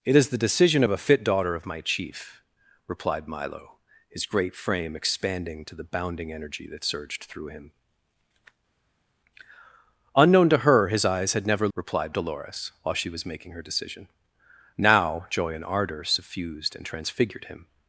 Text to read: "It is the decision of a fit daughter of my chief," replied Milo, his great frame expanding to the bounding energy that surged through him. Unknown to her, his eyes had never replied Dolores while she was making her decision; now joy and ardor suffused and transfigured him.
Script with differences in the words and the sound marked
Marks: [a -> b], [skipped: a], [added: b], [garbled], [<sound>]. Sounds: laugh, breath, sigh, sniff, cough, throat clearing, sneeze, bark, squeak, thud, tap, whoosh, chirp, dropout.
"It is the decision of a fit daughter of my chief," replied Milo, his great frame expanding to the bounding energy that surged through him. Unknown to her, his eyes had never replied Dolores while she was making her decision; now joy and ardor suffused and transfigured him.